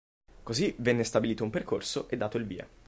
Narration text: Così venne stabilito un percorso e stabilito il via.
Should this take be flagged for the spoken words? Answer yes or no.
yes